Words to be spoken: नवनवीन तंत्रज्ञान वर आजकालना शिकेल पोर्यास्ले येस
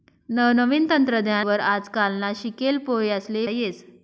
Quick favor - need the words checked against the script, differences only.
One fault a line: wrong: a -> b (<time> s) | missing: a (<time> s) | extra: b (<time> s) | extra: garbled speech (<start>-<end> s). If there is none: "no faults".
no faults